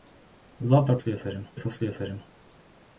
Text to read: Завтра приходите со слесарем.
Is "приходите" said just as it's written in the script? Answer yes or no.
no